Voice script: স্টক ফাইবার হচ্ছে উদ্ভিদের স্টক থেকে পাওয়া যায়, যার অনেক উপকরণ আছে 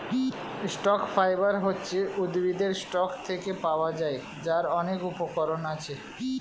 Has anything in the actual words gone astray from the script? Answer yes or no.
no